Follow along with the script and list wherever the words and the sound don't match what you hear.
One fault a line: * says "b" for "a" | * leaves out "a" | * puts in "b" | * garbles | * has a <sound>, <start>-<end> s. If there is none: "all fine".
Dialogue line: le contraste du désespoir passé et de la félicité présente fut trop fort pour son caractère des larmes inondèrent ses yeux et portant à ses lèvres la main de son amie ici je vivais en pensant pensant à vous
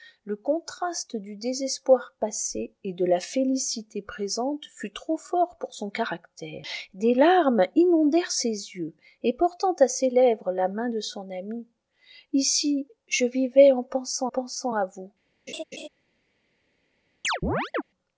* has a laugh, 15.5-15.9 s
* has a chirp, 17.2-17.8 s